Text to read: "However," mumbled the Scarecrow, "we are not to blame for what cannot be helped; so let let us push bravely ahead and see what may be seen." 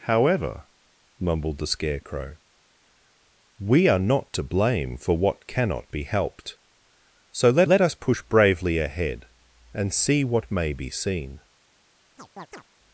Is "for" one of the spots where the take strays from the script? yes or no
no